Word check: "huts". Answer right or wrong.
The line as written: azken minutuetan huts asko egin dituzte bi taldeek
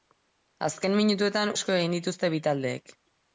wrong